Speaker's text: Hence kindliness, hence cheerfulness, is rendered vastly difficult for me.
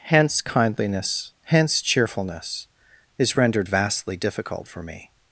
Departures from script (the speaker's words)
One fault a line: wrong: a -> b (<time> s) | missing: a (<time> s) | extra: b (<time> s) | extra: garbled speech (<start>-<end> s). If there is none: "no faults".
no faults